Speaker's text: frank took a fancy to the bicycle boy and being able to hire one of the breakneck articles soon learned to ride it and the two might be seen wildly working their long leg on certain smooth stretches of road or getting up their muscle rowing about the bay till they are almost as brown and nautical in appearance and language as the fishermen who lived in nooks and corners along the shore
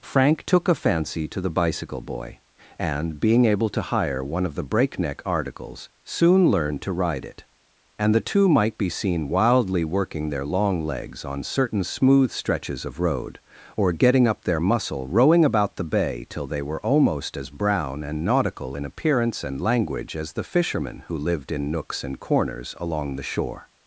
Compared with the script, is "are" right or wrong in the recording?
wrong